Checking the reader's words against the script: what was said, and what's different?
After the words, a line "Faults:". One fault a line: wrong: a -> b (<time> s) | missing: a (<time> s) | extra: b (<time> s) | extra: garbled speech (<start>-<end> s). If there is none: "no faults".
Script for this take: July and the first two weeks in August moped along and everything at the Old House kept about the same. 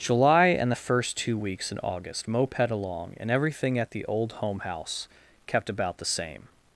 July and the first two weeks in August moped along and everything at the Old Home House kept about the same.
Faults:
extra: Home (4.3 s)